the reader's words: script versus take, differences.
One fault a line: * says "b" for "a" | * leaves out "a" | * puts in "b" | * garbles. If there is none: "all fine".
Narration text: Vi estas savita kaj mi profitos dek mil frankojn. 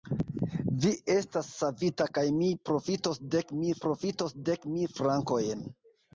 * puts in "profitos dek mil"